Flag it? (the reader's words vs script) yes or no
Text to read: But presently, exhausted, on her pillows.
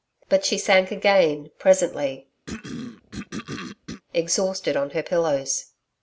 yes